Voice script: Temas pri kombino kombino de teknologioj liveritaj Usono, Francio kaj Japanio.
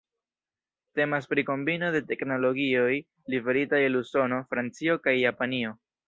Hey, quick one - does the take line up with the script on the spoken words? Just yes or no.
no